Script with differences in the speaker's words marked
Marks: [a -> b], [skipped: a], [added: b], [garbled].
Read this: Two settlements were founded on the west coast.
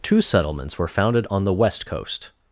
Two settlements were founded on the west coast.